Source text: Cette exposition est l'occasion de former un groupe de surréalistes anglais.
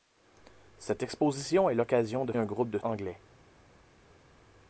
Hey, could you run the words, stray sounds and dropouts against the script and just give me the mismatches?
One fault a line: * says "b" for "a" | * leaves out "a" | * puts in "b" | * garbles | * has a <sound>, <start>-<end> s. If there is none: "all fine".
* leaves out "former"
* leaves out "surréalistes"